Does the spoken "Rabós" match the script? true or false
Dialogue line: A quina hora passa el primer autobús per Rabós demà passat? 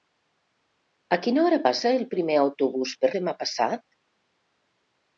false